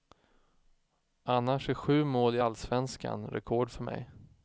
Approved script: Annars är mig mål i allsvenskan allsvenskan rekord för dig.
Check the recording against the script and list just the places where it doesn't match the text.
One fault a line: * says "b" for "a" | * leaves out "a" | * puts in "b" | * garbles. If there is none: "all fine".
* says "sju" for "mig"
* leaves out "allsvenskan"
* says "mig" for "dig"